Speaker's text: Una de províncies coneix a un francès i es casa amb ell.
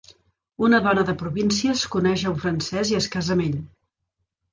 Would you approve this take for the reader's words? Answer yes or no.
no